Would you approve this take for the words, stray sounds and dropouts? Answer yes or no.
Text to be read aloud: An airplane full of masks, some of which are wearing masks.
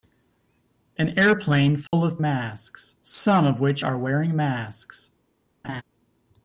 no